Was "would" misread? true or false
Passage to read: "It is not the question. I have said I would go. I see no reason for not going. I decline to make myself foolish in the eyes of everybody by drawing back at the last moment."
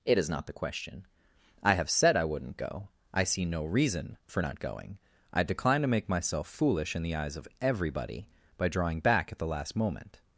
true